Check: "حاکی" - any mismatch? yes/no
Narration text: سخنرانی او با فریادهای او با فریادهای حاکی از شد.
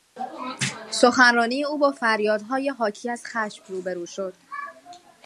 yes